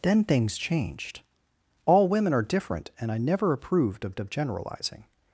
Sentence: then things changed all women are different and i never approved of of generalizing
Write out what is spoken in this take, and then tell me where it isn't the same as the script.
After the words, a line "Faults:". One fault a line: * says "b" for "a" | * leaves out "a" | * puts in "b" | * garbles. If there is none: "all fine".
then things changed all women are different and i never approved of of generalizing
Faults:
all fine